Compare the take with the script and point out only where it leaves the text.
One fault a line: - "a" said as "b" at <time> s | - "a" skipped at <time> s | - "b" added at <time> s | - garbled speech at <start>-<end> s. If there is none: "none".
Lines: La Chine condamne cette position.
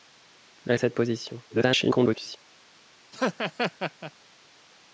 - "Chine condamne" skipped at 0.8 s
- garbled speech at 1.5-2.4 s